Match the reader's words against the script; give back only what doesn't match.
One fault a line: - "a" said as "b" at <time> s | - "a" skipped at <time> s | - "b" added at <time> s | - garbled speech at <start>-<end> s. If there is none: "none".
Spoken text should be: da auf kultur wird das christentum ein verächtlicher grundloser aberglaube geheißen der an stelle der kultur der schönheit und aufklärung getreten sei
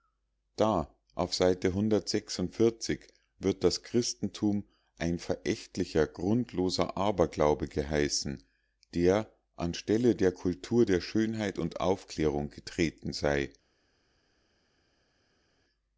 - "kultur" said as "seite" at 1.4 s